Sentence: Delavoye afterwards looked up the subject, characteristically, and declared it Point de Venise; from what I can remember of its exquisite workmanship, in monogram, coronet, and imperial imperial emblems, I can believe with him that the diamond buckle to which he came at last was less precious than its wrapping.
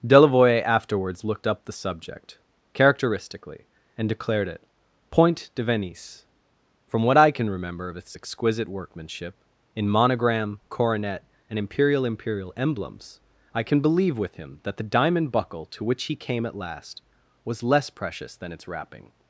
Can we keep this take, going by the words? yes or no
yes